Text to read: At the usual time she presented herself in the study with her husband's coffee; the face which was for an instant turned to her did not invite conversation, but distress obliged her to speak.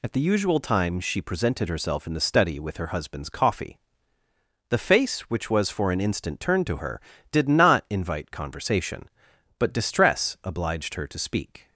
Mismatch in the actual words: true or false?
false